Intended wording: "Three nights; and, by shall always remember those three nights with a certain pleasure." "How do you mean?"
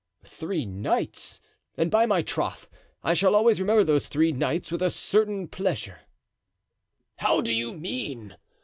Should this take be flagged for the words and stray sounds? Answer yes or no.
yes